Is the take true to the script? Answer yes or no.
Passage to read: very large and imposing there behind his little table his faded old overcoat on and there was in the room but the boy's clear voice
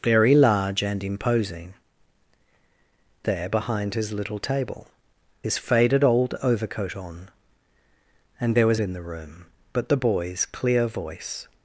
yes